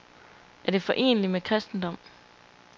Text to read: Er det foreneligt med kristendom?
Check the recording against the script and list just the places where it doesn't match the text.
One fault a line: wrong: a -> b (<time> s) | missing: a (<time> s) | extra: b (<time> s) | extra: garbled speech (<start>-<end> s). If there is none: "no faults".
no faults